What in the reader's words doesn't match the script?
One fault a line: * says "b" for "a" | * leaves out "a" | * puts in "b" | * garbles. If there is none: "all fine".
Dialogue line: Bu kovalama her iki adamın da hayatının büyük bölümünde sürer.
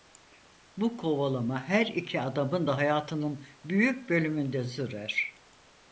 all fine